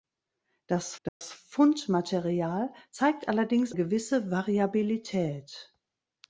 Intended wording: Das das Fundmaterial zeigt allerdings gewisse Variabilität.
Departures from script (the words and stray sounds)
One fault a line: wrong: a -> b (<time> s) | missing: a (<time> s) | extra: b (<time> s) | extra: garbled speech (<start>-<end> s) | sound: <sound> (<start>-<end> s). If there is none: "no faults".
sound: dropout (1.1-1.2 s)